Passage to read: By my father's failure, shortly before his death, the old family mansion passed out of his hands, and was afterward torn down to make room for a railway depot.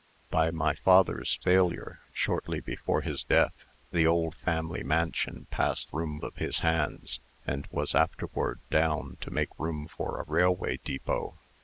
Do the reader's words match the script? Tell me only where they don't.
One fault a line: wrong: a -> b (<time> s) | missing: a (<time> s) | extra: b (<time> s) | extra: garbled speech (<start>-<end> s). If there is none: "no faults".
wrong: out -> room (5.9 s)
missing: torn (8.6 s)